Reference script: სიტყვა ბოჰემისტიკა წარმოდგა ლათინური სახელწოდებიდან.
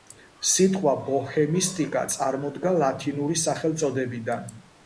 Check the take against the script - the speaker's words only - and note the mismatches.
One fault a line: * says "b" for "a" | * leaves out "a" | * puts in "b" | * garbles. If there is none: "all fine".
all fine